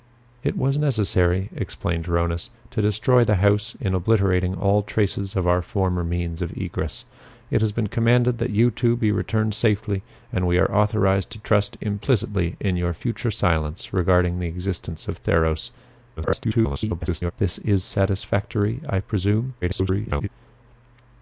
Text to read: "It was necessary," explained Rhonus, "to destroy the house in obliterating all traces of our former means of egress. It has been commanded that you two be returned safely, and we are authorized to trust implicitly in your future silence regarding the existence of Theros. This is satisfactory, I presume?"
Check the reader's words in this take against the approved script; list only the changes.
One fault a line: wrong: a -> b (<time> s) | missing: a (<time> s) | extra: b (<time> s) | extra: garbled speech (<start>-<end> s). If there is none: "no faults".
extra: garbled speech (16.2-17.3 s)
extra: garbled speech (19.6-20.3 s)